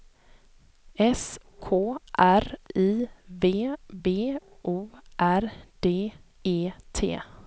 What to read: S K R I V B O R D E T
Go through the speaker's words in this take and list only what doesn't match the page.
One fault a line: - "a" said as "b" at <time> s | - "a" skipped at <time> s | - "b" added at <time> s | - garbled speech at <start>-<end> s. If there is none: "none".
none